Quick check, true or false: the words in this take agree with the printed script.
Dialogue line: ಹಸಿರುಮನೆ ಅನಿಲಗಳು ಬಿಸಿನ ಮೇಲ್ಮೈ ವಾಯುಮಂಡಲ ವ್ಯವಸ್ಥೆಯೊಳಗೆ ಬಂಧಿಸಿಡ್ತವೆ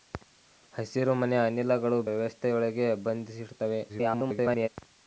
false